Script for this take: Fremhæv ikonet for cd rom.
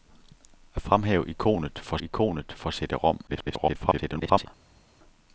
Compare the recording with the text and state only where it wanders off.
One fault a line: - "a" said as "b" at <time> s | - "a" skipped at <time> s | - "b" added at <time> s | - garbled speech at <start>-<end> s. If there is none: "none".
- "ikonet for" added at 2.0 s
- garbled speech at 3.3-4.5 s